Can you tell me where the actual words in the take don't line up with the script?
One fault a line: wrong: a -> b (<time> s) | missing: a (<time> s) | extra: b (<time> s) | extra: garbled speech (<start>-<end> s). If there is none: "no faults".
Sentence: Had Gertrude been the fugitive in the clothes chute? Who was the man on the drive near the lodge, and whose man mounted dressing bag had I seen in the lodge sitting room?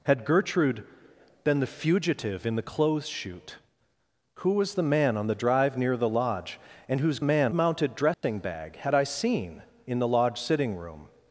no faults